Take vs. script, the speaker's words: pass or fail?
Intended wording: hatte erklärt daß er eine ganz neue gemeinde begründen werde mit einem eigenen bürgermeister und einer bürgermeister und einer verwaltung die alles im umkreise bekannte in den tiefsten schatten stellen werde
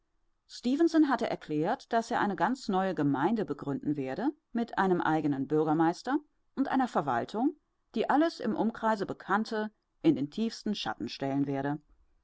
fail